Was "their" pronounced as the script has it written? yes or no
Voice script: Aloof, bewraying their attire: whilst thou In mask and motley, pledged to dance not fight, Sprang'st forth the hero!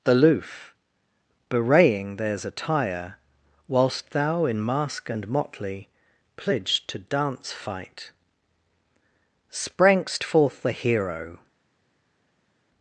no